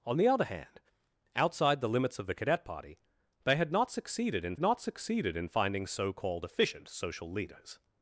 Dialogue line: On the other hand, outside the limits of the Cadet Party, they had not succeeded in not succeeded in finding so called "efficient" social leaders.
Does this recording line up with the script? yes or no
yes